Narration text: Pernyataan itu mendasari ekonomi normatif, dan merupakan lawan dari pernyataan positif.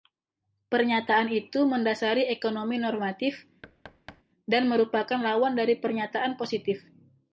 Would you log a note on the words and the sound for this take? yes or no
yes